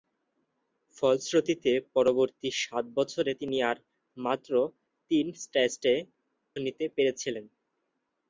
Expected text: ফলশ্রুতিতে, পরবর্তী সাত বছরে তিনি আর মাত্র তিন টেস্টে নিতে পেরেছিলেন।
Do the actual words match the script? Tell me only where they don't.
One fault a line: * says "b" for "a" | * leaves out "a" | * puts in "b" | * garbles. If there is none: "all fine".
all fine